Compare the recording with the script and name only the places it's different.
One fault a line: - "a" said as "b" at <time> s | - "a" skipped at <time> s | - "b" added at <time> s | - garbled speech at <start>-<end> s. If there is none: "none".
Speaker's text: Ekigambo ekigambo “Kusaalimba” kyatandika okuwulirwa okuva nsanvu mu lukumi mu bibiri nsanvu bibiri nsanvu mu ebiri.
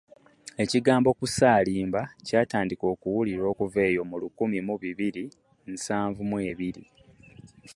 - "ekigambo" skipped at 1.1 s
- "nsanvu" said as "eyo" at 3.9 s
- "bibiri nsanvu" skipped at 6.2 s